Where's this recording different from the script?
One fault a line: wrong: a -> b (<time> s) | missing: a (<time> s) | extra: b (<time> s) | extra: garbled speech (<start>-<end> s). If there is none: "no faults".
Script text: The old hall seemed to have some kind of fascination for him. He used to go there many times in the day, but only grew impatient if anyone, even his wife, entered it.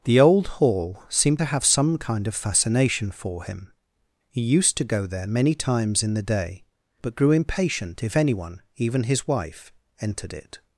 missing: only (7.2 s)